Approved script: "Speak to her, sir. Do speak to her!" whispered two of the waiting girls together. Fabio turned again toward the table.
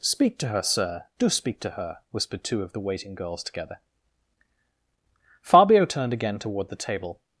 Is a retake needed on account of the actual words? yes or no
no